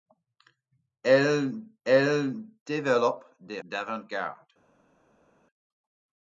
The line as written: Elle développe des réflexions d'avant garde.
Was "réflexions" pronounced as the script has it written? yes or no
no